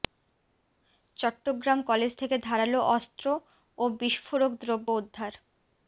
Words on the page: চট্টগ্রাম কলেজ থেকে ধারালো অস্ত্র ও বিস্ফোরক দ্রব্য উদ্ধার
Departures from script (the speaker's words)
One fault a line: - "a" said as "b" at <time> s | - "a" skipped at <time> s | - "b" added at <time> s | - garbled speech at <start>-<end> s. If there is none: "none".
none